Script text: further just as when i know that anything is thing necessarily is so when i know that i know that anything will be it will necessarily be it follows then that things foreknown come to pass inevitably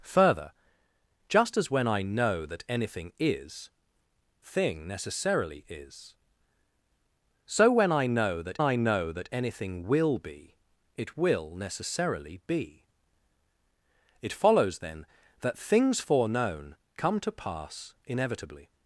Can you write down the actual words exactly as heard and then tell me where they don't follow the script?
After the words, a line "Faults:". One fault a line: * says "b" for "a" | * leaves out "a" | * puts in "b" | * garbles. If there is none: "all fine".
further just as when i know that anything is thing necessarily is so when i know that i know that anything will be it will necessarily be it follows then that things foreknown come to pass inevitably
Faults:
all fine